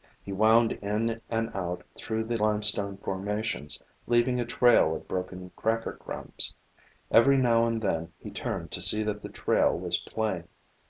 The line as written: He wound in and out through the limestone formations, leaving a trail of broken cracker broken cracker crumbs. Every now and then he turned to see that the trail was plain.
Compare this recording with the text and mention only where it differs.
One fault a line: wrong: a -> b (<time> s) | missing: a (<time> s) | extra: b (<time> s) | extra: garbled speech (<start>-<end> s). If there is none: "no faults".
missing: broken cracker (5.9 s)